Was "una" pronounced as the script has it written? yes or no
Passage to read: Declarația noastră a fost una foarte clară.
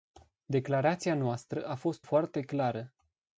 no